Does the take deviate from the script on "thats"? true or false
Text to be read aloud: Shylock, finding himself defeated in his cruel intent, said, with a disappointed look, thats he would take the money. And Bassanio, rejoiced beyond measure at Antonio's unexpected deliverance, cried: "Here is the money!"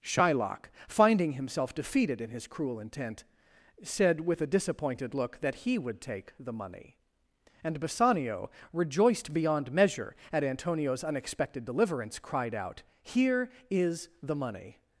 true